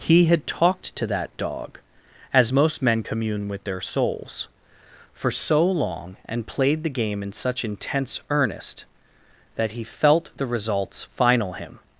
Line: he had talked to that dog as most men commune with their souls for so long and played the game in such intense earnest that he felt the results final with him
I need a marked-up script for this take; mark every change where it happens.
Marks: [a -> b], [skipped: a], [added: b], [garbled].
he had talked to that dog as most men commune with their souls for so long and played the game in such intense earnest that he felt the results final [skipped: with] him